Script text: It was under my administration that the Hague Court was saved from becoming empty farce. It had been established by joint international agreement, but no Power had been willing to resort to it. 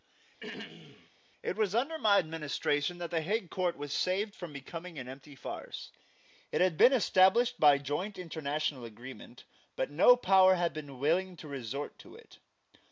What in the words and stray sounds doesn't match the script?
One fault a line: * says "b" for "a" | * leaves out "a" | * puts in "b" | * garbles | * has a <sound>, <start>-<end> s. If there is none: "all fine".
* has a throat clearing, 0.4-1.1 s
* puts in "an"